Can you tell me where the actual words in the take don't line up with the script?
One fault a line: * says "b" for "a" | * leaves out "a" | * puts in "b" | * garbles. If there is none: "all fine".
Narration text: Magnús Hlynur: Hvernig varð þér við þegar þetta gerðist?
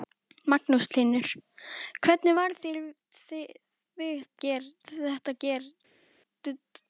* says "gerðist" for "þegar"